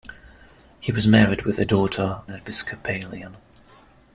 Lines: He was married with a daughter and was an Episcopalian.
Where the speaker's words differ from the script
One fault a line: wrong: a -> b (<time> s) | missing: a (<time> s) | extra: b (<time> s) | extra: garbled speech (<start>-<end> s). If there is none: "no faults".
missing: and was an (2.2 s)